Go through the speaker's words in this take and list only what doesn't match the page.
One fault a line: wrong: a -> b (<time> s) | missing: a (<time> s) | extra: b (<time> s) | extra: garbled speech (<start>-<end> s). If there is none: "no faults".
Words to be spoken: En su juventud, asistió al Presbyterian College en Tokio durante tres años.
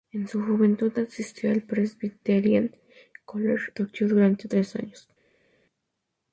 missing: en (3.7 s)